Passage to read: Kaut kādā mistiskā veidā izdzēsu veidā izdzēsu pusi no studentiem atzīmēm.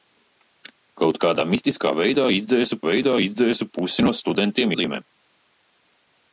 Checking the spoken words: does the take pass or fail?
pass